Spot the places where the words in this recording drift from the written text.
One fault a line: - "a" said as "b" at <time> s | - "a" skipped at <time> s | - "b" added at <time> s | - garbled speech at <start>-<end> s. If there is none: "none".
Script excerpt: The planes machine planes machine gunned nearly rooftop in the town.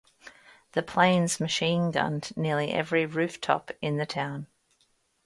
- "planes machine" skipped at 1.9 s
- "every" added at 2.7 s